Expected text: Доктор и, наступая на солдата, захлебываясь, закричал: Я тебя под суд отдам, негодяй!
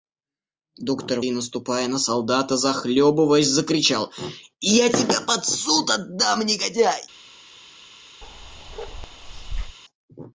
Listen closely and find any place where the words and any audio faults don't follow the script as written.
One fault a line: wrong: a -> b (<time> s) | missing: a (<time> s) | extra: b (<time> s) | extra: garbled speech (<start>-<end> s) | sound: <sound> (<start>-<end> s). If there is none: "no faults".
sound: bark (8.2-9.8 s)